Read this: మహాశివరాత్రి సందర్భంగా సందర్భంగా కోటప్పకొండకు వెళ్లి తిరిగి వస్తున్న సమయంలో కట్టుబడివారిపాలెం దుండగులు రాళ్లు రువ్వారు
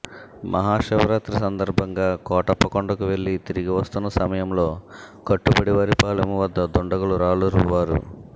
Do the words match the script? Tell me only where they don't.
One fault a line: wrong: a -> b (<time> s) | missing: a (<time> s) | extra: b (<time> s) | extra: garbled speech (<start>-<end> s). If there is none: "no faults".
missing: సందర్భంగా (2.1 s)
extra: వద్ద (6.4 s)